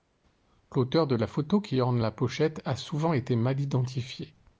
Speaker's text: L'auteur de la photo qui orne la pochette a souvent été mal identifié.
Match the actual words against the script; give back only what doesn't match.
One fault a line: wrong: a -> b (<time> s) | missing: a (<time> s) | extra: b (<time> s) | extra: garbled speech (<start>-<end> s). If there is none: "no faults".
no faults